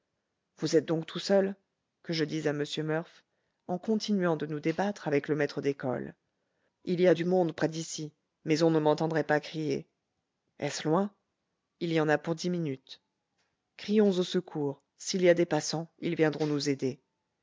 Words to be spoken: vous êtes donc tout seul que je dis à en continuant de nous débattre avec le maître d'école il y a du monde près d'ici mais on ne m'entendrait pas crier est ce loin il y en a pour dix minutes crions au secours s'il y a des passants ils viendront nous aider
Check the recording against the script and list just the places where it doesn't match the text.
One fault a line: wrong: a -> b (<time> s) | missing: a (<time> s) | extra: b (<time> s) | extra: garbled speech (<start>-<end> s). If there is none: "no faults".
extra: m murph (2.5 s)